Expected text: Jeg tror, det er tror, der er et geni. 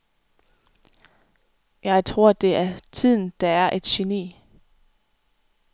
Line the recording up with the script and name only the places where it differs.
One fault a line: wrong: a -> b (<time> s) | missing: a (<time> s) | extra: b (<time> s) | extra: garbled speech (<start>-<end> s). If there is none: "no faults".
wrong: tror -> tiden (2.9 s)